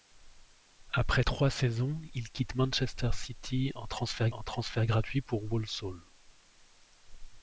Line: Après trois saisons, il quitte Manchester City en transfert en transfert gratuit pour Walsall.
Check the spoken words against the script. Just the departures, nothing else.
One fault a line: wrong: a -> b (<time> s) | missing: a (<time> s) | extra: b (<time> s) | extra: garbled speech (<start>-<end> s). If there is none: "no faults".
no faults